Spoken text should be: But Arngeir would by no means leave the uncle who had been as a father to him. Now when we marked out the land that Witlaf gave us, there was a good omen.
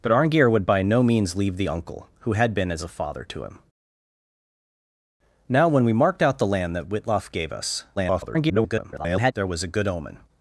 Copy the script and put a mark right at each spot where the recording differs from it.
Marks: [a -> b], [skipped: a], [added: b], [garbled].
But Arngeir would by no means leave the uncle who had been as a father to him. Now when we marked out the land that Witlaf gave us, [garbled] there was a good omen.